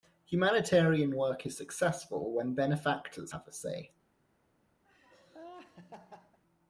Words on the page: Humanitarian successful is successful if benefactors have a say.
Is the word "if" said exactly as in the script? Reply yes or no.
no